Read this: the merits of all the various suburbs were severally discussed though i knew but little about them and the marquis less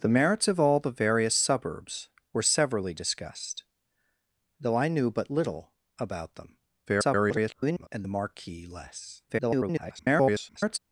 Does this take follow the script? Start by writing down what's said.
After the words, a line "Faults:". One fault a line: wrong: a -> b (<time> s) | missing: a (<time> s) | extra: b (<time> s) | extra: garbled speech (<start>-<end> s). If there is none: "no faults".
the merits of all the various suburbs were severally discussed though i knew but little about them [garbled] and the marquis less [garbled]
Faults:
extra: garbled speech (6.9-7.9 s)
extra: garbled speech (9.3-10.8 s)